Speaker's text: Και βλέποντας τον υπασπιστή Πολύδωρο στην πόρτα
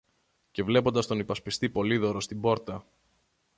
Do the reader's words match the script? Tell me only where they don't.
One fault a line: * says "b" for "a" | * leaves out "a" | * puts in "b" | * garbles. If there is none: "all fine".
all fine